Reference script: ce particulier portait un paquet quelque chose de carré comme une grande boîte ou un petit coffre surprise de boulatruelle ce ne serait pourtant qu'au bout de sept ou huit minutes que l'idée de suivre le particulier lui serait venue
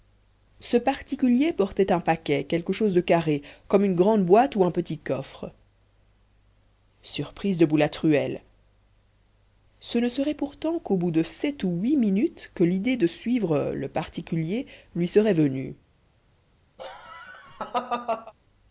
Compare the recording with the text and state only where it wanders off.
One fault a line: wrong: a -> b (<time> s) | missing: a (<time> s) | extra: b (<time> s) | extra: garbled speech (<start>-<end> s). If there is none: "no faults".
no faults